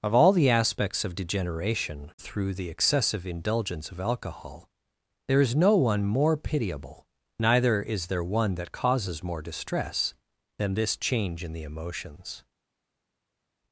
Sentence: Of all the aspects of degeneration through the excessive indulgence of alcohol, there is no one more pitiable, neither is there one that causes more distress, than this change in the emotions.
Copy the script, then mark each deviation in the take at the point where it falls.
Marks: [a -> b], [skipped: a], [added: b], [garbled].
Of all the aspects of degeneration through the excessive indulgence of alcohol, there is no one more pitiable, neither is there one that causes more distress, than this change in the emotions.